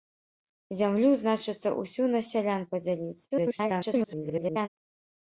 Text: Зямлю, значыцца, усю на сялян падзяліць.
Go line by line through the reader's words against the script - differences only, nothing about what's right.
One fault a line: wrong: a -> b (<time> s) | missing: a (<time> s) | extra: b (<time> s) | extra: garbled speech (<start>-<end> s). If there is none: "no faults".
extra: garbled speech (3.3-4.7 s)